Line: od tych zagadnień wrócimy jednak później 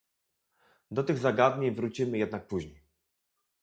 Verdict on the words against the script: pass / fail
fail